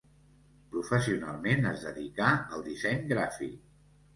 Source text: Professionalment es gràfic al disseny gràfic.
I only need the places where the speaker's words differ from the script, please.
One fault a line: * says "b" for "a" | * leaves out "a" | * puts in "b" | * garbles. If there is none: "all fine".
* says "dedicà" for "gràfic"